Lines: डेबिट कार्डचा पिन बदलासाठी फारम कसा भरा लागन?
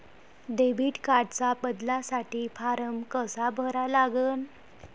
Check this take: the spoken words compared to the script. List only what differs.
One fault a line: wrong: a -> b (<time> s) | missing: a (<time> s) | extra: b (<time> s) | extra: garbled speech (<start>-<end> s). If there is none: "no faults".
missing: पिन (1.5 s)